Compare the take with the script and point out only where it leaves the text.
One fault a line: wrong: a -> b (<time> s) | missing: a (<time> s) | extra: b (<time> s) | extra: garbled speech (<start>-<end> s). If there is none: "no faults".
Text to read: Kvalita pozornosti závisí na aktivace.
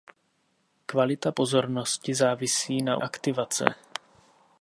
no faults